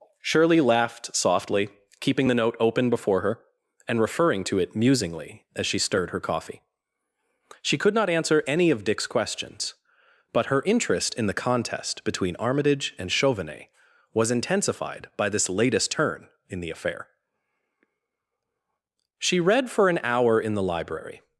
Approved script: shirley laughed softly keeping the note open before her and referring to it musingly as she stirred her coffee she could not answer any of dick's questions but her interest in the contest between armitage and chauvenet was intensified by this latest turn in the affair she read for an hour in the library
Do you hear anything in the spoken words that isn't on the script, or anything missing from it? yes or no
no